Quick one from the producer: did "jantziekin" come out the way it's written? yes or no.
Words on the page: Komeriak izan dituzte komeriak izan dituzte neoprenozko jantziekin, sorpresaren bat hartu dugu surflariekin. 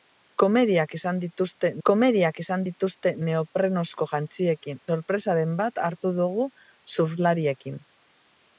yes